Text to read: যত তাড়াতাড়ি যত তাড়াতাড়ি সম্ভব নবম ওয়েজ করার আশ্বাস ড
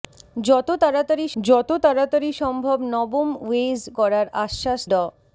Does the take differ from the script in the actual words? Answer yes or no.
no